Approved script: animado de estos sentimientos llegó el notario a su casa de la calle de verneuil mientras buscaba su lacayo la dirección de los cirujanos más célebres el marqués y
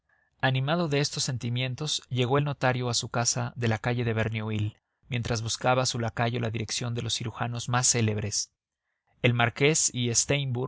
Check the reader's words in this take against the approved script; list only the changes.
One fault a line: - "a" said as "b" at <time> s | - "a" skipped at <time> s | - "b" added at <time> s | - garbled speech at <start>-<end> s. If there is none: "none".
none